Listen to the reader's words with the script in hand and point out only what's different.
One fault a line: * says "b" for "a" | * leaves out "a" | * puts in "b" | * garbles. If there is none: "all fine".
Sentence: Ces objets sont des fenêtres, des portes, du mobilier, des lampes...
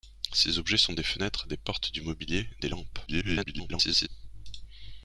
* garbles